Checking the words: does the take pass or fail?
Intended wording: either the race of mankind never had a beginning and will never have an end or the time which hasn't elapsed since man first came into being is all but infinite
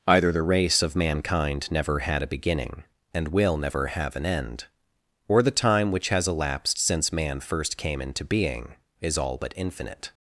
fail